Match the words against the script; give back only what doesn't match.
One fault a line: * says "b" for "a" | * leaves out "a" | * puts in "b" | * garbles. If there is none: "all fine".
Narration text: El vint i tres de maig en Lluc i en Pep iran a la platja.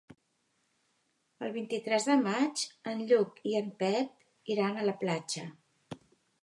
all fine